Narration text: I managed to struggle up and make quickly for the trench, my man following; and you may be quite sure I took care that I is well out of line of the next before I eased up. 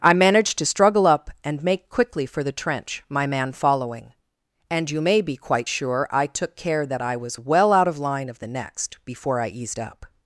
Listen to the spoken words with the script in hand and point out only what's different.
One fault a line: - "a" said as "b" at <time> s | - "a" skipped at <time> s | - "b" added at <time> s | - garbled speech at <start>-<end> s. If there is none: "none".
- "is" said as "was" at 7.2 s